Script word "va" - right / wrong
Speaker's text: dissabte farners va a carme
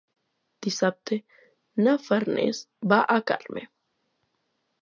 right